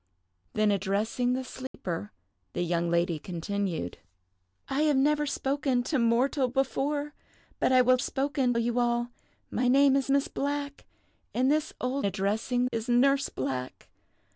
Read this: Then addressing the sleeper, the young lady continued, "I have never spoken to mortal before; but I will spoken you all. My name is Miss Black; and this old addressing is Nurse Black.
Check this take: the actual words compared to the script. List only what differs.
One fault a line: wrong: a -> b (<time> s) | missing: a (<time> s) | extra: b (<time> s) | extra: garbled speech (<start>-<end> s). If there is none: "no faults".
no faults